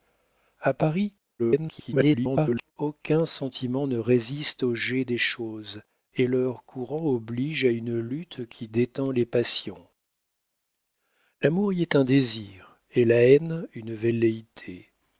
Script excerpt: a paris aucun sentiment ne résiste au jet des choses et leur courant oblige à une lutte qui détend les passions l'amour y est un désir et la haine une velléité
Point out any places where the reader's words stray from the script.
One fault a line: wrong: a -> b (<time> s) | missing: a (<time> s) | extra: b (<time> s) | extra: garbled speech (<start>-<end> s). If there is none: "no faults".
extra: garbled speech (1.4-2.7 s)